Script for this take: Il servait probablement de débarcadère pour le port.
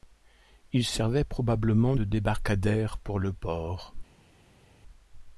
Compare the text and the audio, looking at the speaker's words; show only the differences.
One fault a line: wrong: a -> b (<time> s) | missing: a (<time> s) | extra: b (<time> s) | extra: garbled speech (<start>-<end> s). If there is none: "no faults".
no faults